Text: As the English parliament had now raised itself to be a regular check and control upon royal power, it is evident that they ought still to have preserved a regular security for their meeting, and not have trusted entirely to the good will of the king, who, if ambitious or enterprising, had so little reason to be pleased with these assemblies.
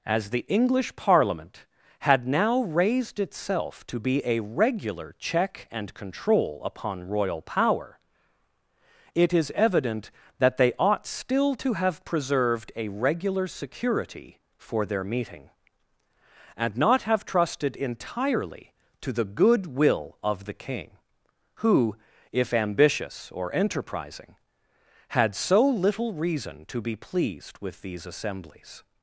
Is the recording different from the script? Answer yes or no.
no